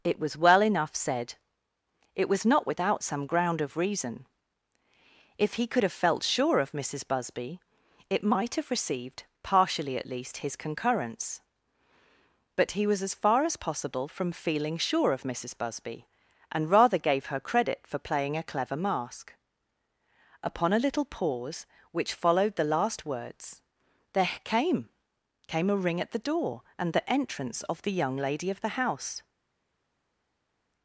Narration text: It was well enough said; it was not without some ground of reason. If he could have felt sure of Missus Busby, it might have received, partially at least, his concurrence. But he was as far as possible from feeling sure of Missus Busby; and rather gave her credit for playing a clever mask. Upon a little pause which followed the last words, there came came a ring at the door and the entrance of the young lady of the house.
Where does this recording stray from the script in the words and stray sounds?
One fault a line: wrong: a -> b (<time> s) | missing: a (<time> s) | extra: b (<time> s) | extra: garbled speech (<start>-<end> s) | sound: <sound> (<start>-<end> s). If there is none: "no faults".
no faults